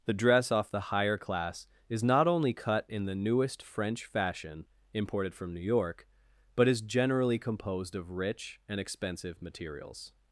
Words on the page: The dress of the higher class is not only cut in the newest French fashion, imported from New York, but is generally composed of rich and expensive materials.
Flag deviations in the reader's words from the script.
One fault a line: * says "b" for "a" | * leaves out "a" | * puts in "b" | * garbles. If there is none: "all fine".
* says "off" for "of"